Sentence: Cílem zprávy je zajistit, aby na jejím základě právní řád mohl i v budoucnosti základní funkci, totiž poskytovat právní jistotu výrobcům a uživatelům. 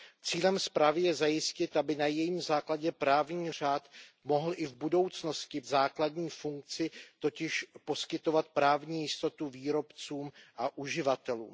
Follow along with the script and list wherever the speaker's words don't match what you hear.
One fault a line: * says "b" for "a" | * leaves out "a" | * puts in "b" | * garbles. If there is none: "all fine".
all fine